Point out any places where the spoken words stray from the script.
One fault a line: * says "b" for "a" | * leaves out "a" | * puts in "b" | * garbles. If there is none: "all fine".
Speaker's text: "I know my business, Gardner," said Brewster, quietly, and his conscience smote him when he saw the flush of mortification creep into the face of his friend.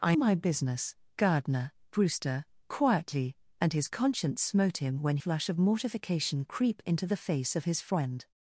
* leaves out "know"
* leaves out "said"
* leaves out "he saw the"